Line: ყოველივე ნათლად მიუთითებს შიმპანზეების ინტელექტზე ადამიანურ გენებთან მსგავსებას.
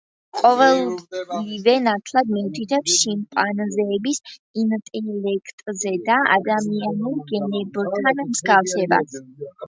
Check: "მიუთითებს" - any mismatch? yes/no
no